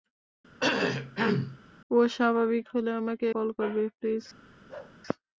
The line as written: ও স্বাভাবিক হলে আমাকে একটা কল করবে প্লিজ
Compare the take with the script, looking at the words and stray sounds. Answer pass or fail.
fail